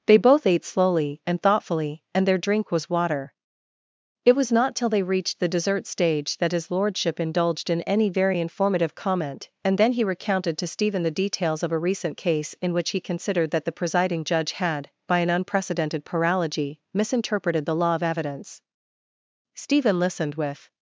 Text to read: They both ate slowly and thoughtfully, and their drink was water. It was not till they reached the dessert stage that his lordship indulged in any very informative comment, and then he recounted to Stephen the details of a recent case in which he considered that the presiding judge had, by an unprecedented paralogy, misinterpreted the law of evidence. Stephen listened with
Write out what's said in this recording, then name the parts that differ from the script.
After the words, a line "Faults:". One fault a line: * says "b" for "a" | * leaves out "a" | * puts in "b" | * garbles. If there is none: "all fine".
They both ate slowly and thoughtfully, and their drink was water. It was not till they reached the dessert stage that his lordship indulged in any very informative comment, and then he recounted to Stephen the details of a recent case in which he considered that the presiding judge had, by an unprecedented paralogy, misinterpreted the law of evidence. Stephen listened with
Faults:
all fine